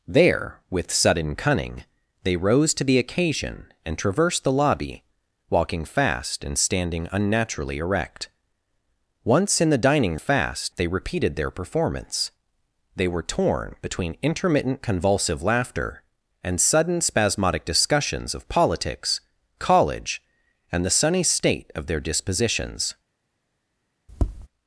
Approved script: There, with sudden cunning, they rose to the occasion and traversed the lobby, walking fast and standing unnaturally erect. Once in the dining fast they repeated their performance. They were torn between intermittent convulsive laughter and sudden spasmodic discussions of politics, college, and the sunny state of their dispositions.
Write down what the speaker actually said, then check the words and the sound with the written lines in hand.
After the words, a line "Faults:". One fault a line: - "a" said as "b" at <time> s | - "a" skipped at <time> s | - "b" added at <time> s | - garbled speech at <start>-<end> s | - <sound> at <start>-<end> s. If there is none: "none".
There, with sudden cunning, they rose to the occasion and traversed the lobby, walking fast and standing unnaturally erect. Once in the dining fast they repeated their performance. They were torn between intermittent convulsive laughter and sudden spasmodic discussions of politics, college, and the sunny state of their dispositions.
Faults:
- tap at 24.1-24.5 s